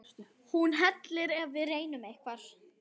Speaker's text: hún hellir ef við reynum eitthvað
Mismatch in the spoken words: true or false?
false